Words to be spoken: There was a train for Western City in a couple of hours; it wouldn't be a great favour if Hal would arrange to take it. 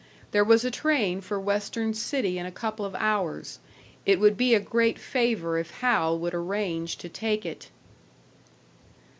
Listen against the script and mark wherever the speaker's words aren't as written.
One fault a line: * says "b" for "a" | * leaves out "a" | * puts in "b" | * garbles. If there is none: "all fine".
* says "would" for "wouldn't"